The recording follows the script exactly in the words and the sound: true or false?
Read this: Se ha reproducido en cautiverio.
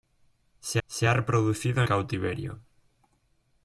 false